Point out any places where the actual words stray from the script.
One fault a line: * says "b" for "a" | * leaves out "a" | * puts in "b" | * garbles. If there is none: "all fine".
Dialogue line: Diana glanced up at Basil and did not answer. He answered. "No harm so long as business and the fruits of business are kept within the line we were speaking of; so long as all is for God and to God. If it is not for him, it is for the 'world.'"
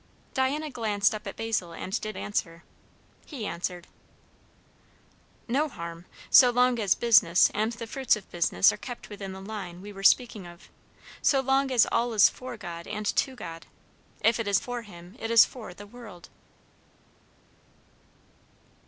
* leaves out "not"
* leaves out "not"